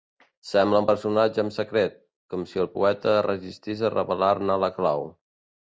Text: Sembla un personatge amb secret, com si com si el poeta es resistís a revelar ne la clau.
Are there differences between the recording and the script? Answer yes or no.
yes